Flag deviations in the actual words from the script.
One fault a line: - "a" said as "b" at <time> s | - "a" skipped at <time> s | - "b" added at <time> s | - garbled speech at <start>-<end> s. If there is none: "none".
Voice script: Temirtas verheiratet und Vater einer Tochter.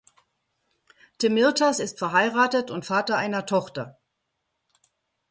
- "ist" added at 1.8 s